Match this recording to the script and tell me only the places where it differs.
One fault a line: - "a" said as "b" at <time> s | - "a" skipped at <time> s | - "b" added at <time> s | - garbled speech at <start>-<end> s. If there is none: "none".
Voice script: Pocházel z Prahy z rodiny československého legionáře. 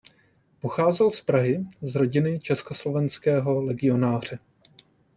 none